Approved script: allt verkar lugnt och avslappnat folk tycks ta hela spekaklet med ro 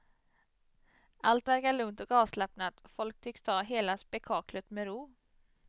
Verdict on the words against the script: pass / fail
pass